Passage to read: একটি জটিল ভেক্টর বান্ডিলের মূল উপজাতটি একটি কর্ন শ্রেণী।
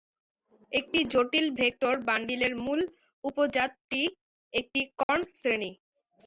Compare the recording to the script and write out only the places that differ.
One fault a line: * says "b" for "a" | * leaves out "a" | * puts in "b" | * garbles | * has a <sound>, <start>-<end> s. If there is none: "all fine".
* has a dropout, 5.0-5.1 s